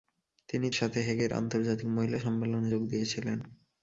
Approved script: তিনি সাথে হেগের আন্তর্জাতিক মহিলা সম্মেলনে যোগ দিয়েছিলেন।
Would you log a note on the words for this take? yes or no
no